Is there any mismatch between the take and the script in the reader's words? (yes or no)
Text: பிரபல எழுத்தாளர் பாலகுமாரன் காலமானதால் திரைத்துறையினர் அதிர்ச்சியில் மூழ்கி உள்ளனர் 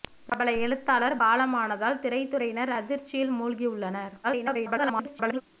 yes